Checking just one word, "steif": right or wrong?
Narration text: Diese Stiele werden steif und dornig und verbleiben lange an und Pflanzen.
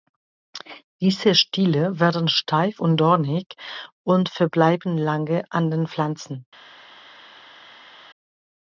right